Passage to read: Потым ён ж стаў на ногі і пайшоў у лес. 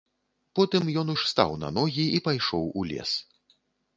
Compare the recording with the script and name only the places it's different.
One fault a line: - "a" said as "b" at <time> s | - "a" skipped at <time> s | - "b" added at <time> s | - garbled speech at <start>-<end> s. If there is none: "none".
none